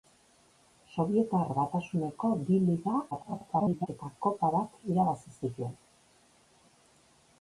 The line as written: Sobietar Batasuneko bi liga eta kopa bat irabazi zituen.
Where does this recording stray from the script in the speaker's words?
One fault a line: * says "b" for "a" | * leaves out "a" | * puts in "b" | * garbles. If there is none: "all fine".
* garbles